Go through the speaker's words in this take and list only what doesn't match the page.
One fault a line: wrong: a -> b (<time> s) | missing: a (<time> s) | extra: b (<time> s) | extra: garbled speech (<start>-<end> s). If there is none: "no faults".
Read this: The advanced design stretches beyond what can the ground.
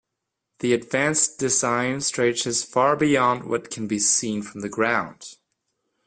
extra: far (2.6 s)
extra: be seen from (3.9 s)